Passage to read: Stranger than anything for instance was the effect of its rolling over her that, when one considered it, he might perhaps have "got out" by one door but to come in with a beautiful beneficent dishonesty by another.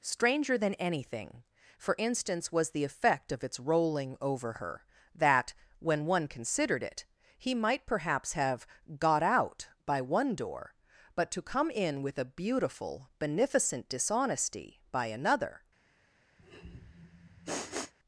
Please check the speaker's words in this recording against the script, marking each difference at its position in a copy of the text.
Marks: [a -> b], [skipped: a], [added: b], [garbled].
Stranger than anything for instance was the effect of its rolling over her that, when one considered it, he might perhaps have "got out" by one door but to come in with a beautiful beneficent dishonesty by another.